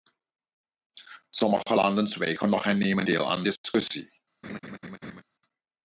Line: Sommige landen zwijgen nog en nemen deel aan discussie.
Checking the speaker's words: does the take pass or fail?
pass